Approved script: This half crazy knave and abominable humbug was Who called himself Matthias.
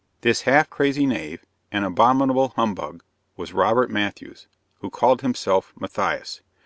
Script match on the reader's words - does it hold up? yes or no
no